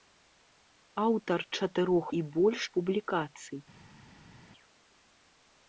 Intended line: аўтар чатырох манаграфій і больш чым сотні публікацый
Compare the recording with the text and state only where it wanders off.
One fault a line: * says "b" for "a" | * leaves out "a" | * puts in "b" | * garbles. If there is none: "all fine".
* leaves out "манаграфій"
* leaves out "чым сотні"